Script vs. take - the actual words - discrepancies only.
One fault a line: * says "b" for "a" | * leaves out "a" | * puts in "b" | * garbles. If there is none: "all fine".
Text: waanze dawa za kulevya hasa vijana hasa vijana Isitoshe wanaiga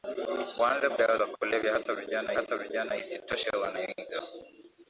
all fine